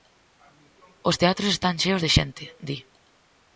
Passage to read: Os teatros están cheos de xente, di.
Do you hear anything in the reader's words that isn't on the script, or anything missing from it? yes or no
no